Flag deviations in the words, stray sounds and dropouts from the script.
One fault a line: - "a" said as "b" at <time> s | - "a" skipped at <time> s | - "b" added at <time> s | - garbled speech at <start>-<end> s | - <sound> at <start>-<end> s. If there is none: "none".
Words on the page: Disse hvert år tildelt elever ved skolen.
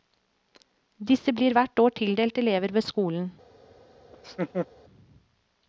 - "blir" added at 1.3 s
- laugh at 4.1-4.7 s